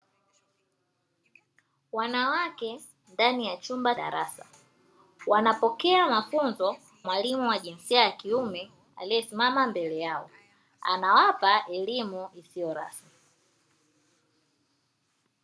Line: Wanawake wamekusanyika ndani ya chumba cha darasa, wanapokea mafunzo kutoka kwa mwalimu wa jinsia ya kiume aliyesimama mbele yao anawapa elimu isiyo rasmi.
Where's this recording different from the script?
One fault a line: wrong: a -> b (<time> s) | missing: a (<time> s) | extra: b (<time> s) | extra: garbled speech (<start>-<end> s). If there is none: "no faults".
missing: wamekusanyika (2.8 s)
missing: cha (3.9 s)
missing: kutoka kwa (6.8 s)